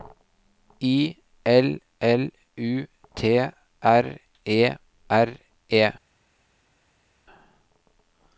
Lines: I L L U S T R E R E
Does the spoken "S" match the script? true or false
false